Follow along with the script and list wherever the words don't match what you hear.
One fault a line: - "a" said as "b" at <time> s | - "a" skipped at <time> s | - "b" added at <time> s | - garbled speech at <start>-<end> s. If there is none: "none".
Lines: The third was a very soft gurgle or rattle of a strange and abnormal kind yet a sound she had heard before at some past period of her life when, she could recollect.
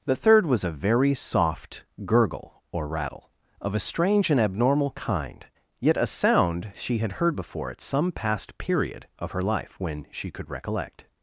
none